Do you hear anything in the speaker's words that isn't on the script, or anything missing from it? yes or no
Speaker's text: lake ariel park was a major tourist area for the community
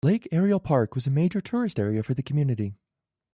no